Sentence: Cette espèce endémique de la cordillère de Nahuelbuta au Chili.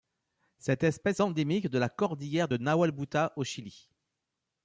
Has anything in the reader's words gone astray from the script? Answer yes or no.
no